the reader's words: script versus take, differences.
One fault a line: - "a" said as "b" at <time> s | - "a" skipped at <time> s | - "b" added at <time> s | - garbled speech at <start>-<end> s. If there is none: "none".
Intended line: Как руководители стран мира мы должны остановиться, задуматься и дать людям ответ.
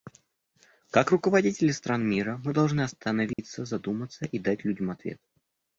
none